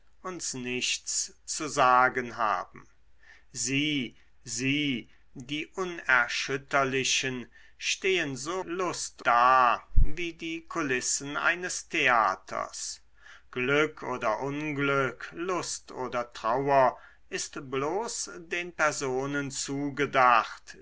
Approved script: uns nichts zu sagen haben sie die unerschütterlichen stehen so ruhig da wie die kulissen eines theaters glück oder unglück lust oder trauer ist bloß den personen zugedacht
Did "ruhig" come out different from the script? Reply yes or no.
yes